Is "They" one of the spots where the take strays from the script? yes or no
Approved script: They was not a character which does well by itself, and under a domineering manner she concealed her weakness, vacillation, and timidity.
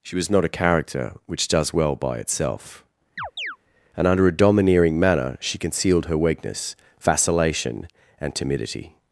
yes